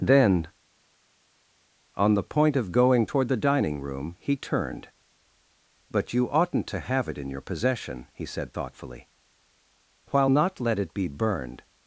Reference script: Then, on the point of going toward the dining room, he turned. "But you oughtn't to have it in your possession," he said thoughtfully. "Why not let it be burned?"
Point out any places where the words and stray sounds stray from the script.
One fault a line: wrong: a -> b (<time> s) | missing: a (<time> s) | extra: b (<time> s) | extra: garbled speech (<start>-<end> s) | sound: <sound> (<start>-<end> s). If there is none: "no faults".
wrong: Why -> While (10.1 s)